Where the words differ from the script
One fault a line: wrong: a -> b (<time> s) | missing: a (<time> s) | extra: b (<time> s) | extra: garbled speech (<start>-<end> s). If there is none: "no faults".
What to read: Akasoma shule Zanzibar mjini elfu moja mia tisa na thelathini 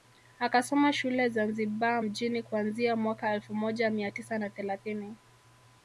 extra: kuanzia mwaka (2.4 s)